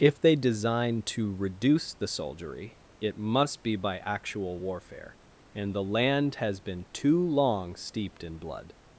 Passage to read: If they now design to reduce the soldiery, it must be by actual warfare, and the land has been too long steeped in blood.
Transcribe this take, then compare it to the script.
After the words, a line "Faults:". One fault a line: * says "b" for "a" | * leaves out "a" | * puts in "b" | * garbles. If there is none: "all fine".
If they design to reduce the soldiery, it must be by actual warfare, and the land has been too long steeped in blood.
Faults:
* leaves out "now"